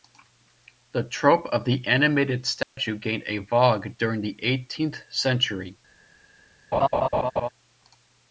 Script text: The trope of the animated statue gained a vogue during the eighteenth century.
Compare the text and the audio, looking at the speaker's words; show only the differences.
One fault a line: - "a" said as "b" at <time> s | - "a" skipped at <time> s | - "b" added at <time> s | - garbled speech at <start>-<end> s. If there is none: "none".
none